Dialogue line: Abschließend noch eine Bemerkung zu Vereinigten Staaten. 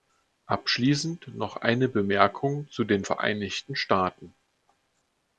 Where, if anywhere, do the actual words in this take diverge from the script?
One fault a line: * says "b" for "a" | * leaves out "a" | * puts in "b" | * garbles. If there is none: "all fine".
* puts in "den"